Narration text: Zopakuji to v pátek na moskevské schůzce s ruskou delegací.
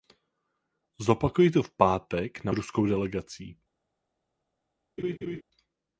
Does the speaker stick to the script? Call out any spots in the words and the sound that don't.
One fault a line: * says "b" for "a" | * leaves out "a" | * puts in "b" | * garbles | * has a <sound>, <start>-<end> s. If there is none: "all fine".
* leaves out "moskevské schůzce s"
* has a laugh, 5.0-5.4 s